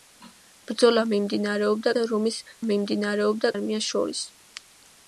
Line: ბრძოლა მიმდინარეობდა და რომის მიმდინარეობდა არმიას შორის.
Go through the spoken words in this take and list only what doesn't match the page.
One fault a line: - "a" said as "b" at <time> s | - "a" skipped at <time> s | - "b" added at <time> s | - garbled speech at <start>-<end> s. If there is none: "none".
none